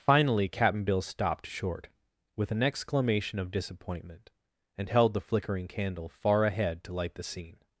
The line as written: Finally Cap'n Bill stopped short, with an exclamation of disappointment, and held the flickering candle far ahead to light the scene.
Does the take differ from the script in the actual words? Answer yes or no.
no